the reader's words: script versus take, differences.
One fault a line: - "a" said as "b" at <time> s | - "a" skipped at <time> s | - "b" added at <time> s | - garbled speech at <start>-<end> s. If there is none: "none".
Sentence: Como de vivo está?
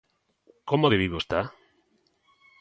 none